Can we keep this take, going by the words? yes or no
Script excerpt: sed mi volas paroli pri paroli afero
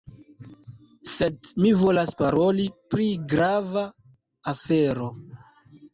no